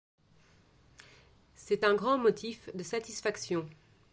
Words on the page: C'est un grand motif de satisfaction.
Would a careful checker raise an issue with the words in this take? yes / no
no